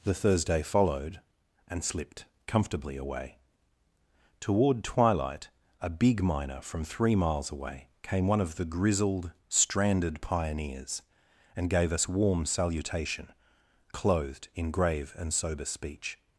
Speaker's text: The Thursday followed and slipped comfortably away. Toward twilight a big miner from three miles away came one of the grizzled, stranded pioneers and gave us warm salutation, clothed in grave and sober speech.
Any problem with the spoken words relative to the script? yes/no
no